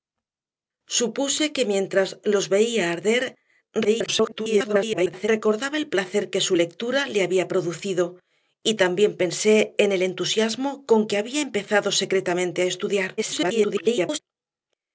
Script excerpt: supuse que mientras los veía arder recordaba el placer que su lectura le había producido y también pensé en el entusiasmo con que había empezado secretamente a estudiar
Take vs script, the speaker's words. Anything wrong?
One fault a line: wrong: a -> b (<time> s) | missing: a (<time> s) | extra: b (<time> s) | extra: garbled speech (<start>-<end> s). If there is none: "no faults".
extra: garbled speech (3.8-5.3 s)
extra: garbled speech (13.2-14.2 s)